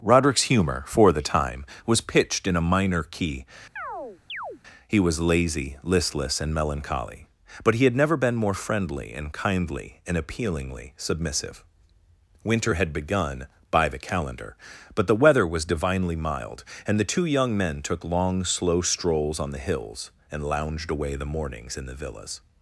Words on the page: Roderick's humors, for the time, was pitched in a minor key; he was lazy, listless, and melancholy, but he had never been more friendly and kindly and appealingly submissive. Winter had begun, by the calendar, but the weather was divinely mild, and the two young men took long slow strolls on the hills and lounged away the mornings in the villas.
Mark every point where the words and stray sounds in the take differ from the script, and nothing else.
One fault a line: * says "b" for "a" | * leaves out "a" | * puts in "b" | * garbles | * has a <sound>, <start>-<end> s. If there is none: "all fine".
* says "humor" for "humors"
* has a chirp, 3.8-4.6 s